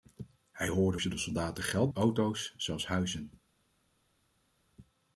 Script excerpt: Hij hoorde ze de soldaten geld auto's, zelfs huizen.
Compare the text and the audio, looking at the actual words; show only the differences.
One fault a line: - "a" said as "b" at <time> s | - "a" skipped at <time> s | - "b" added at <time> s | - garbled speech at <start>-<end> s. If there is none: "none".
none